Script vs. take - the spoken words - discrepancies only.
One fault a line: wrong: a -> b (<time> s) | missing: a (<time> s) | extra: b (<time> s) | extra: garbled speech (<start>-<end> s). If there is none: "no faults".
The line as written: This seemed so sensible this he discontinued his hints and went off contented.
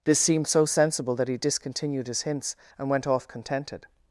wrong: this -> that (1.1 s)